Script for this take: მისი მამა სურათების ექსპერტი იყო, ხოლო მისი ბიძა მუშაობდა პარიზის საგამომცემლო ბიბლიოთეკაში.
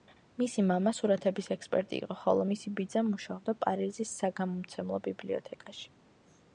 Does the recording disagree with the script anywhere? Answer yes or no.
no